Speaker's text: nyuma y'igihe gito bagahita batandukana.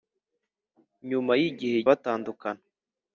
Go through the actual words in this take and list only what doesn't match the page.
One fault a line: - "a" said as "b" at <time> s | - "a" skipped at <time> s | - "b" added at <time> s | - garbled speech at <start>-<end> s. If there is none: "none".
- "gito bagahita" skipped at 1.8 s